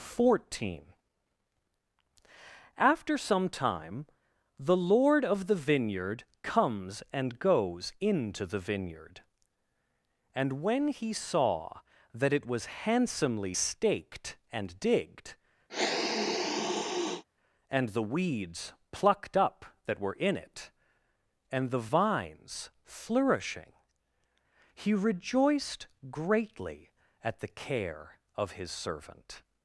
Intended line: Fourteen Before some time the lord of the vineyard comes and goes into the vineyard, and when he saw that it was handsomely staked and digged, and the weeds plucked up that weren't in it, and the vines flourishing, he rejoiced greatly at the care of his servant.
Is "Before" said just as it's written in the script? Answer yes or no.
no